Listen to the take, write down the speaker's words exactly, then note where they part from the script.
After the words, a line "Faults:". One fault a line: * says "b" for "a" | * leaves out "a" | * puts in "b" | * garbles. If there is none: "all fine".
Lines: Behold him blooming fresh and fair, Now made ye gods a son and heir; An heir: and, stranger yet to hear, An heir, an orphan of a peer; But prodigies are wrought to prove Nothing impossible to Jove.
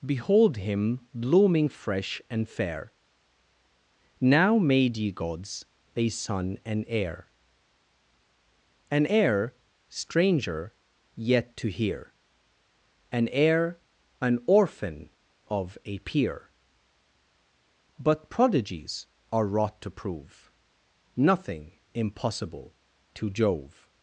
Behold him blooming fresh and fair, Now made ye gods a son and heir; An heir: stranger yet to hear, An heir, an orphan of a peer; But prodigies are wrought to prove Nothing impossible to Jove.
Faults:
* leaves out "and"